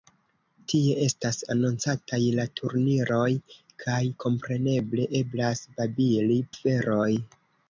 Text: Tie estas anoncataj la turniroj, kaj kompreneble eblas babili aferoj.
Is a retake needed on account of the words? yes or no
no